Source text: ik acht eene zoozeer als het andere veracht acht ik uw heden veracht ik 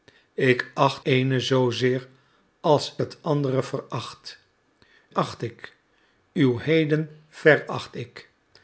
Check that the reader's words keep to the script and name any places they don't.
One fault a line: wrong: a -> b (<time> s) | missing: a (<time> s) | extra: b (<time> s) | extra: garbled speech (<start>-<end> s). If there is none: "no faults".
no faults